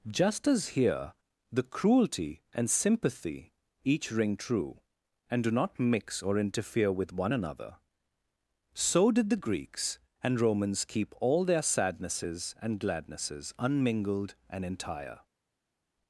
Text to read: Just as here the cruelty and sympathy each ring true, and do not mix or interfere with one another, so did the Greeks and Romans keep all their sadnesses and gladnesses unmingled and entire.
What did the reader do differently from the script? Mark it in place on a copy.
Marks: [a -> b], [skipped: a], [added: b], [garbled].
Just as here the cruelty and sympathy each ring true, and do not mix or interfere with one another, so did the Greeks and Romans keep all their sadnesses and gladnesses unmingled and entire.